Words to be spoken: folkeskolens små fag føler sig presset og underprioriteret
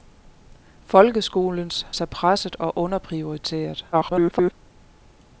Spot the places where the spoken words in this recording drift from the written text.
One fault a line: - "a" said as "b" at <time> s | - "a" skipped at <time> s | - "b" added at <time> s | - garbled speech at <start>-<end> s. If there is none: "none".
- "små fag føler" skipped at 1.9 s
- garbled speech at 3.9-4.5 s